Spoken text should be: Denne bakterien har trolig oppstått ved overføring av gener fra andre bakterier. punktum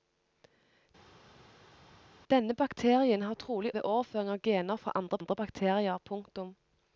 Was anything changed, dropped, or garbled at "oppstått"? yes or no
yes